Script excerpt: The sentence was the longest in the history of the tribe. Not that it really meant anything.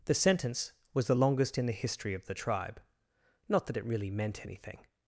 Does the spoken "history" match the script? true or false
true